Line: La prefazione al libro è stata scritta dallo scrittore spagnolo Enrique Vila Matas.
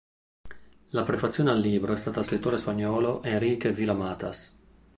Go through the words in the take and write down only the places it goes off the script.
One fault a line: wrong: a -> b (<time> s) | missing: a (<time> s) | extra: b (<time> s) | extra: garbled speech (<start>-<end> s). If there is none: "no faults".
missing: scritta dallo (2.2 s)